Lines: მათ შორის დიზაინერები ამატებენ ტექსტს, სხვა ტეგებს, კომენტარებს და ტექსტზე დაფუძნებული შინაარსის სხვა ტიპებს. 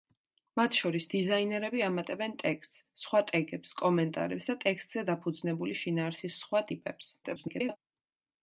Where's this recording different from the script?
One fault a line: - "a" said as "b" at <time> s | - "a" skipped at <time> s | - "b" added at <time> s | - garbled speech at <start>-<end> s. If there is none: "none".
- garbled speech at 7.2-7.8 s